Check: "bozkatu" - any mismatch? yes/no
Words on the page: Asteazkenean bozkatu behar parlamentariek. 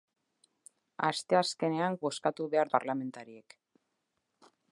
no